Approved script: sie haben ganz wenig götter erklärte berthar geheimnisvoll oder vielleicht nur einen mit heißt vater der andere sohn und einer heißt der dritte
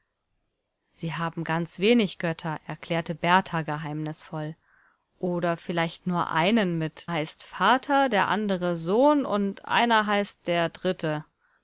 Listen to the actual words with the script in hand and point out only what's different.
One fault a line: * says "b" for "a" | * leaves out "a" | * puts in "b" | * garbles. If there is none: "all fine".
all fine